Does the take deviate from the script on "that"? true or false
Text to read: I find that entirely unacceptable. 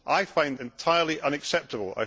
true